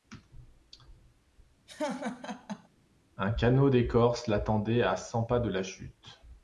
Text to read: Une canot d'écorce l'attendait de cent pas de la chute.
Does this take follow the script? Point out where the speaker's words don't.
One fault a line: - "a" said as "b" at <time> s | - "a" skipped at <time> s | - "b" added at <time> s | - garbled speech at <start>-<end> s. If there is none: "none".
- "Une" said as "Un" at 3.2 s
- "de" said as "à" at 4.8 s